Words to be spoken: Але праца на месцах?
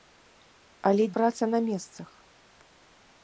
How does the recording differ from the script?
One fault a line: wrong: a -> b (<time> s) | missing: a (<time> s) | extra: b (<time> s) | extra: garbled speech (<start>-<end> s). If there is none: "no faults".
no faults